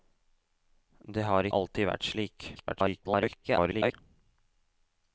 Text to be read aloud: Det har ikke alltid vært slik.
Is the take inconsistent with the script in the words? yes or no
yes